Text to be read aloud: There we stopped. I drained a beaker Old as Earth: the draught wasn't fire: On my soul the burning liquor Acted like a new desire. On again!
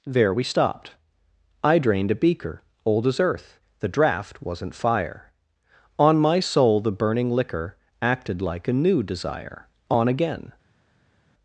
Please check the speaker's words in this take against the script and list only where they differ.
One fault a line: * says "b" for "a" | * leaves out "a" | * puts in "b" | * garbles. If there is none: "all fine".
all fine